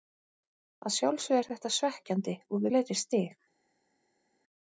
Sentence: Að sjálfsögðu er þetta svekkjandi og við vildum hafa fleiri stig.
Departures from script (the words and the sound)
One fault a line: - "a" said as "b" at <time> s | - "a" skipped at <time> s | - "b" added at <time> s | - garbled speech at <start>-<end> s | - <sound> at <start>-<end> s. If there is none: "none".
- "við vildum hafa" skipped at 2.7 s